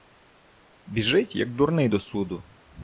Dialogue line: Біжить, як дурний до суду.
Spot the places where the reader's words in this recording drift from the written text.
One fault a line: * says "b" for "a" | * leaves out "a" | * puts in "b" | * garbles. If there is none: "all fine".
all fine